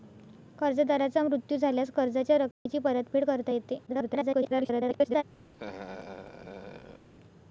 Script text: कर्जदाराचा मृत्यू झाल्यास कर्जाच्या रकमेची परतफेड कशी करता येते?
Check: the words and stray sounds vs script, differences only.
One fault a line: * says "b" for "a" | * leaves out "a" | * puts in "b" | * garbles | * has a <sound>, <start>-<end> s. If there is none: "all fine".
* has a dropout, 2.5-2.7 s
* leaves out "कशी"
* garbles
* has a laugh, 5.5-7.1 s